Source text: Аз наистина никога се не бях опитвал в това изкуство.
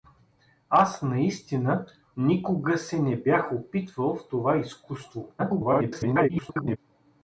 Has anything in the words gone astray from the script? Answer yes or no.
yes